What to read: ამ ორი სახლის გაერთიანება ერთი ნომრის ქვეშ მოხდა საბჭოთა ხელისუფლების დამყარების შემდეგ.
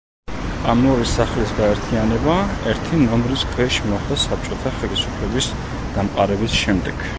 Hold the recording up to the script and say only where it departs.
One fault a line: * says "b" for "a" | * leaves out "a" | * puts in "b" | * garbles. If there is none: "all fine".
all fine